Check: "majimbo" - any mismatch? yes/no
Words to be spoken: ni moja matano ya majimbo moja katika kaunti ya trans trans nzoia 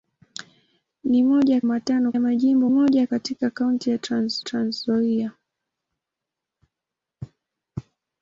no